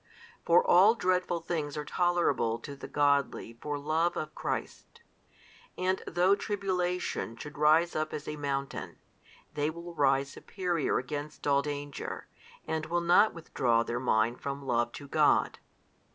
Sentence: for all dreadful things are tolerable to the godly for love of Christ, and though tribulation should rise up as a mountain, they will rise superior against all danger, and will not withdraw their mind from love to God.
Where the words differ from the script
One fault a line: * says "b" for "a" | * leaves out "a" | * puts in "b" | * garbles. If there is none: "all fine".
all fine